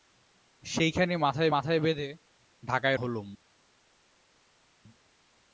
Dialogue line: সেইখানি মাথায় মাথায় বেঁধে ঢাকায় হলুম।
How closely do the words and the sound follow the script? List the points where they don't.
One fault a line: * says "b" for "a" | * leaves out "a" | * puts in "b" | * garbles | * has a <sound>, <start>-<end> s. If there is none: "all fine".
all fine